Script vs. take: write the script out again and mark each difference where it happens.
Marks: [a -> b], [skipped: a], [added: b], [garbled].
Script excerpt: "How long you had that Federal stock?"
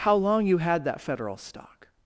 "How long you had that Federal stock?"